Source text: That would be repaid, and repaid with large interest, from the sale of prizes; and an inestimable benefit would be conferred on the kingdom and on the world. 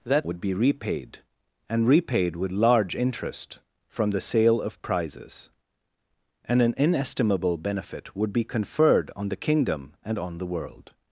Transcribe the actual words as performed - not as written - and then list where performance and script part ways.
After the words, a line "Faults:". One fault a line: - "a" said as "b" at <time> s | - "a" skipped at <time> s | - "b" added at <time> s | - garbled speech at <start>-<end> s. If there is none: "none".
That would be repaid, and repaid with large interest, from the sale of prizes; and an inestimable benefit would be conferred on the kingdom and on the world.
Faults:
none